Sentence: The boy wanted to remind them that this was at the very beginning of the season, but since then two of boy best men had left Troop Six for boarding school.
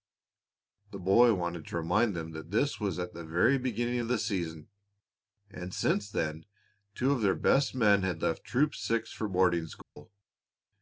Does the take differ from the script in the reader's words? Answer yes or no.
yes